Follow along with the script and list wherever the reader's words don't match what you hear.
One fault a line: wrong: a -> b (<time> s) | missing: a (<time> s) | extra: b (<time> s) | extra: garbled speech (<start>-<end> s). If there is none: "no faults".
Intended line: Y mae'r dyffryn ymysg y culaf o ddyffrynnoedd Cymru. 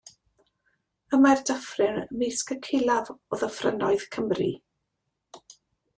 no faults